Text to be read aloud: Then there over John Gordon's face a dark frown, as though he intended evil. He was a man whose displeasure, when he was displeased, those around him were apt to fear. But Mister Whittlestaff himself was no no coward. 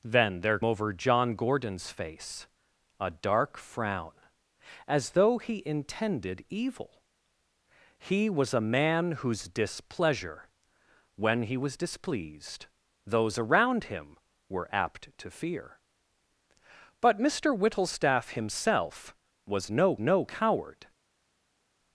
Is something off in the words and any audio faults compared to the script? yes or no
no